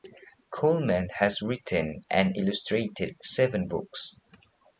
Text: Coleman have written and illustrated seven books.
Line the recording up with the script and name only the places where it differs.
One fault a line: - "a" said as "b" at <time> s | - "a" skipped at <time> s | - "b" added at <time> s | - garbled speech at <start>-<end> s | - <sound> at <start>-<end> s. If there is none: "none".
- "have" said as "has" at 1.1 s